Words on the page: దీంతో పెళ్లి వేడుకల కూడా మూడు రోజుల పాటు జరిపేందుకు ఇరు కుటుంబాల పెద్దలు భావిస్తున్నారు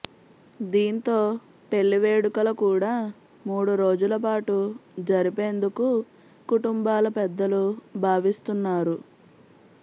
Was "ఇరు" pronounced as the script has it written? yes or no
no